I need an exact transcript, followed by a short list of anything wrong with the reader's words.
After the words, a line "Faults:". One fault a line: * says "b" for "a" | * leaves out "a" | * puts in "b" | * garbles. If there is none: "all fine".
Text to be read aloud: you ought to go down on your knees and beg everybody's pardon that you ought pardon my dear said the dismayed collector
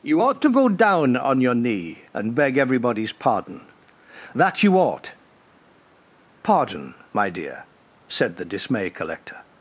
you ought to go down on your knee and beg everybody's pardon that you ought pardon my dear said the dismay collector
Faults:
* says "knee" for "knees"
* says "dismay" for "dismayed"